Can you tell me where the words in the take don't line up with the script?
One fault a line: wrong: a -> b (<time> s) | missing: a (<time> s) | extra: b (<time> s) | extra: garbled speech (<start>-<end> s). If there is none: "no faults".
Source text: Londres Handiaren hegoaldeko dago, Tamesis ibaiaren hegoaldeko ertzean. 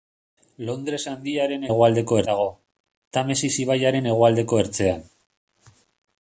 no faults